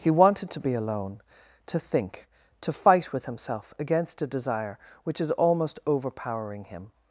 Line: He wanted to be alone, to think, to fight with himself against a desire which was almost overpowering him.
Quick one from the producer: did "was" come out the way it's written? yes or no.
no